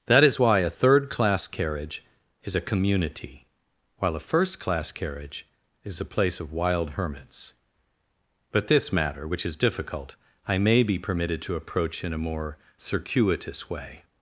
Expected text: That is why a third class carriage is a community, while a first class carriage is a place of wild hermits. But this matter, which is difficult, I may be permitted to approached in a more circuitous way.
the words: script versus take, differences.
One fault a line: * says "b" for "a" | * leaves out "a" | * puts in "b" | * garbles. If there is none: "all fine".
* says "approach" for "approached"